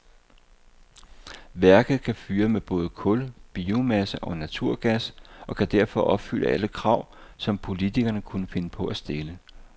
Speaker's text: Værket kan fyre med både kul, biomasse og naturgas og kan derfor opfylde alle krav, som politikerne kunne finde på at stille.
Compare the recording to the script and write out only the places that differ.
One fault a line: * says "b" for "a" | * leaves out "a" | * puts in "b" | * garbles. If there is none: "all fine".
all fine